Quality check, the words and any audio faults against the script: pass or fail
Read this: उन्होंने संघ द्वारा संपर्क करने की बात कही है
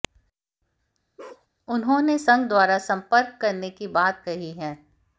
fail